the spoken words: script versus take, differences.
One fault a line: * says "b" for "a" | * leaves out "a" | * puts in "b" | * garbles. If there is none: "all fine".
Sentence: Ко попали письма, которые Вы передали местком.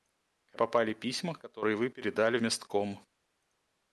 all fine